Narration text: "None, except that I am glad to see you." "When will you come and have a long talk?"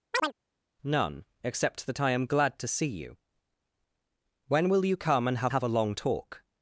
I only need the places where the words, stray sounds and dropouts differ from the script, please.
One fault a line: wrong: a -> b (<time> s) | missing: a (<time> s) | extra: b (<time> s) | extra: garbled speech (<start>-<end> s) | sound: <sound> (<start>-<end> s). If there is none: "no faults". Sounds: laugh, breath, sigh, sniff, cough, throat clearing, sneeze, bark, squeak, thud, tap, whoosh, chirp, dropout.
sound: chirp (0.1-0.3 s)
extra: have (5.5 s)